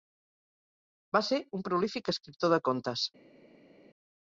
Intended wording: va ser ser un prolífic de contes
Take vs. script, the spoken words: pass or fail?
fail